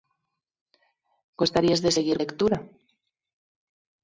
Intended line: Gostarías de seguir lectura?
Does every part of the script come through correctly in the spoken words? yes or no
yes